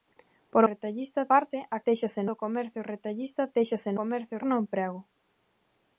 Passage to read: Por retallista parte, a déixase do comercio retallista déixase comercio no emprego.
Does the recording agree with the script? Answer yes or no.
yes